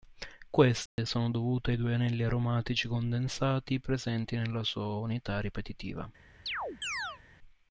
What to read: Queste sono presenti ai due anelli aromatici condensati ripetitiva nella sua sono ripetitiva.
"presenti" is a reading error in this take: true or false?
true